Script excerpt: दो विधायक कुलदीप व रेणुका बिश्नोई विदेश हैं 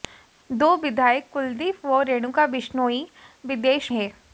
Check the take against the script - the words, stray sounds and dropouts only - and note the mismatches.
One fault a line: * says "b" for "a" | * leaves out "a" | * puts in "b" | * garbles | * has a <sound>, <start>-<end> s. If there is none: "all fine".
all fine